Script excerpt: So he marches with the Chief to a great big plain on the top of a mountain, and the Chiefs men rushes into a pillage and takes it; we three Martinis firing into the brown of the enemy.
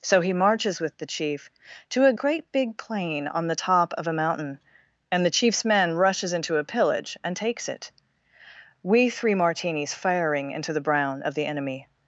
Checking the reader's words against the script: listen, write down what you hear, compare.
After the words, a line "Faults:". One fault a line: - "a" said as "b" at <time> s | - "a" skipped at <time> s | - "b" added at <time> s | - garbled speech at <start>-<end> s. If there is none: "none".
So he marches with the Chief to a great big plain on the top of a mountain, and the Chiefs men rushes into a pillage and takes it; we three Martinis firing into the brown of the enemy.
Faults:
none